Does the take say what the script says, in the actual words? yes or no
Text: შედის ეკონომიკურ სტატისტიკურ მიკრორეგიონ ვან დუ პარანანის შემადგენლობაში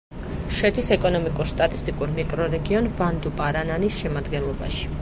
yes